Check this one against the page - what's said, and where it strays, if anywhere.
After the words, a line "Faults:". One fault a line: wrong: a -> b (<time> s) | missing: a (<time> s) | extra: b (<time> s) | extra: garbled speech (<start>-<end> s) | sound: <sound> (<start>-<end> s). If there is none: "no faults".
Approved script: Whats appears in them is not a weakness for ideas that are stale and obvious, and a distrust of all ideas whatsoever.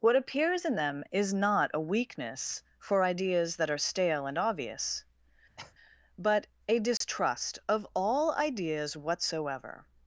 What appears in them is not a weakness for ideas that are stale and obvious, but a distrust of all ideas whatsoever.
Faults:
wrong: Whats -> What (0.0 s)
sound: cough (5.6-5.7 s)
wrong: and -> but (6.2 s)
sound: dropout (7.0-7.0 s)